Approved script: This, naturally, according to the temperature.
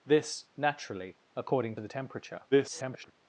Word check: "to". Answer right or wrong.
wrong